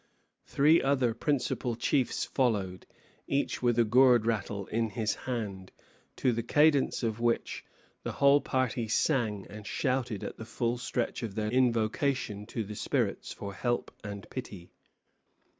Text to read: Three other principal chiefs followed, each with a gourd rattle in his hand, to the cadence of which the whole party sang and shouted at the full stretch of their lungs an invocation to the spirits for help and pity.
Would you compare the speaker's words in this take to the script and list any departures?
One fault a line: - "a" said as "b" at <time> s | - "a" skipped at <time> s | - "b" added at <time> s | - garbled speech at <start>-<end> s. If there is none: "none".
- "lungs an" skipped at 11.5 s